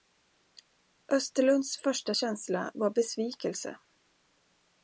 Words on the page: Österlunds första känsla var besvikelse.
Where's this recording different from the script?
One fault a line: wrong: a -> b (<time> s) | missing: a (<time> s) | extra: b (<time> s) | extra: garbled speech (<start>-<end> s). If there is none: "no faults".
no faults